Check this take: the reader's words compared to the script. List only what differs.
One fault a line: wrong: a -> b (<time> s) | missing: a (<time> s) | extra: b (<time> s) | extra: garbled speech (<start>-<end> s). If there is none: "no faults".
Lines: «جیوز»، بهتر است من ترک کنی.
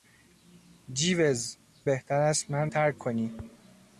no faults